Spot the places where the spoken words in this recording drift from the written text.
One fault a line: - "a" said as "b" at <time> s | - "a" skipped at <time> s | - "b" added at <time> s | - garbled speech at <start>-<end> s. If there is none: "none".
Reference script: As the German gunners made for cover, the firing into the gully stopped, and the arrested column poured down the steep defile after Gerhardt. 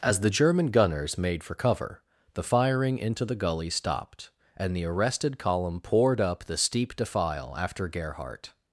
- "down" said as "up" at 6.2 s